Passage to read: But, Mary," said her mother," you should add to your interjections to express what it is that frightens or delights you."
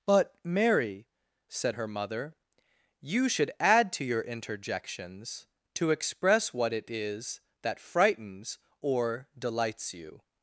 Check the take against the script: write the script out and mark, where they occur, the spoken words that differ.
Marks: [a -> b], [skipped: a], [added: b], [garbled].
But, Mary," said her mother," you should add to your interjections to express what it is that frightens or delights you."